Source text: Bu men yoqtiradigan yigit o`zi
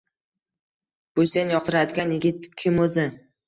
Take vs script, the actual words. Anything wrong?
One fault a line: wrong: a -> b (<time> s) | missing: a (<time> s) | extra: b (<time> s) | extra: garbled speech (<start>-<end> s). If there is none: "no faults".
wrong: men -> sen (1.3 s)
extra: kim (2.6 s)